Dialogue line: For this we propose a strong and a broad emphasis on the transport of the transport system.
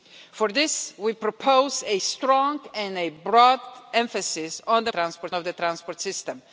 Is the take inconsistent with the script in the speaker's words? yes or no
no